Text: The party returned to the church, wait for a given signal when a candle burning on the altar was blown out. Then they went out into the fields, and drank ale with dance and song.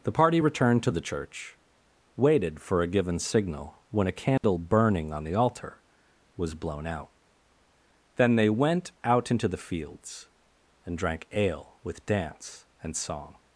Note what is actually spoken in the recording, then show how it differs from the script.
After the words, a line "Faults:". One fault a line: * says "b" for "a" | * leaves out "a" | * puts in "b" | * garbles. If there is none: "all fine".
The party returned to the church, waited for a given signal when a candle burning on the altar was blown out. Then they went out into the fields, and drank ale with dance and song.
Faults:
* says "waited" for "wait"